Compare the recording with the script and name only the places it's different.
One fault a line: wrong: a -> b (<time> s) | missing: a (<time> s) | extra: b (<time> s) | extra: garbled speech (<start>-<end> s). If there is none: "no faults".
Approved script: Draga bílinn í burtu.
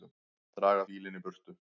no faults